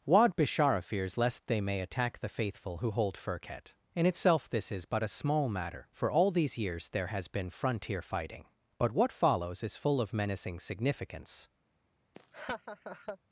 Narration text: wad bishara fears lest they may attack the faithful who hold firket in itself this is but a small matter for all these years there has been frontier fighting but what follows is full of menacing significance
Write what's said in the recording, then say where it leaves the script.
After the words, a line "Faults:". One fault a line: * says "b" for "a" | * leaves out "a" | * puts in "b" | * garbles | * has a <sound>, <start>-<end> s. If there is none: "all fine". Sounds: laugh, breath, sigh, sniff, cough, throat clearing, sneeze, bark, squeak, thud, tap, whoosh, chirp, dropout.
wad bishara fears lest they may attack the faithful who hold firket in itself this is but a small matter for all these years there has been frontier fighting but what follows is full of menacing significance
Faults:
* has a laugh, 12.1-13.2 s